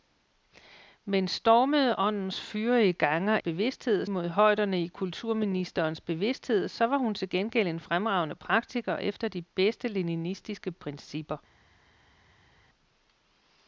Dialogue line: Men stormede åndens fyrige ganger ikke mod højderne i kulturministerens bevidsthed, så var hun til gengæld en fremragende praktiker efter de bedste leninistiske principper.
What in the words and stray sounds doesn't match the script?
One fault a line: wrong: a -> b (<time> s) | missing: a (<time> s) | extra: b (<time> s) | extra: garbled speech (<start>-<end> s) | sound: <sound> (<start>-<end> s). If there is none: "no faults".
wrong: ikke -> bevidsthed (3.4 s)